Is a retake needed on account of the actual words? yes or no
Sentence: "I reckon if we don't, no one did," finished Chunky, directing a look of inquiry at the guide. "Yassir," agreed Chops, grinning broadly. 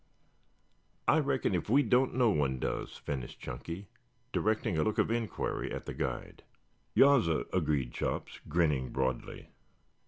yes